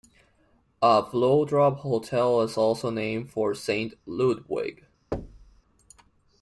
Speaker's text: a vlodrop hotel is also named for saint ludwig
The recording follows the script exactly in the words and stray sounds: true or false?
false